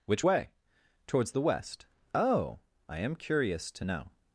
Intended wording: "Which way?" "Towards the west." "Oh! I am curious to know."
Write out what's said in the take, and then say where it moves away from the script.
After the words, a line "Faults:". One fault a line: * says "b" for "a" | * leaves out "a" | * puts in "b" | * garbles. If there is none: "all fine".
"Which way?" "Towards the west." "Oh! I am curious to know."
Faults:
all fine